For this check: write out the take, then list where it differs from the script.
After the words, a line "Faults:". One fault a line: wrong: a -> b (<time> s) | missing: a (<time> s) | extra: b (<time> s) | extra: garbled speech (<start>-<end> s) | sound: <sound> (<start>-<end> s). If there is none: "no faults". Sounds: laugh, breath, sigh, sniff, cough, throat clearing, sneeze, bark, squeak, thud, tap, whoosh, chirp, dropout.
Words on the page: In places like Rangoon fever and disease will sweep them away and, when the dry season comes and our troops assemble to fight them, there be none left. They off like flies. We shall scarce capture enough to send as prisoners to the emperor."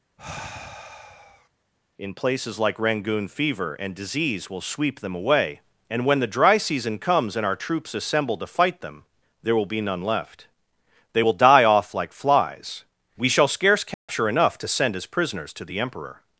In places like Rangoon fever and disease will sweep them away and, when the dry season comes and our troops assemble to fight them, there will be none left. They will die off like flies. We shall scarce capture enough to send as prisoners to the emperor."
Faults:
sound: sigh (0.2-1.5 s)
extra: will (9.5 s)
extra: will die (11.2 s)
sound: dropout (13.9-14.1 s)